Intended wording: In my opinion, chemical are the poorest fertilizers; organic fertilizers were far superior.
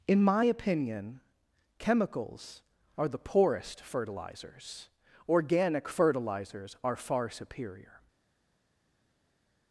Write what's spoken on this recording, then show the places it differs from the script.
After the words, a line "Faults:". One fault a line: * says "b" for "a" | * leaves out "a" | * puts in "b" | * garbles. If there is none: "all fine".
In my opinion, chemicals are the poorest fertilizers; organic fertilizers are far superior.
Faults:
* says "chemicals" for "chemical"
* says "are" for "were"